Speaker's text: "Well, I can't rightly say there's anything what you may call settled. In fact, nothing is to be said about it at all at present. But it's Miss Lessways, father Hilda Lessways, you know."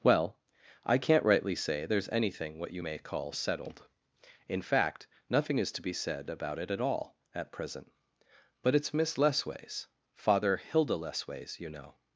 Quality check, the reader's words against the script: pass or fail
pass